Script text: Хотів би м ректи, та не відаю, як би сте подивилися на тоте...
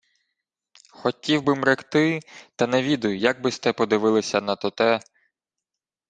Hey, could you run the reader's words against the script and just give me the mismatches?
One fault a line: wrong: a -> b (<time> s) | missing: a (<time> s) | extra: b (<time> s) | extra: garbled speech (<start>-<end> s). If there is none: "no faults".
no faults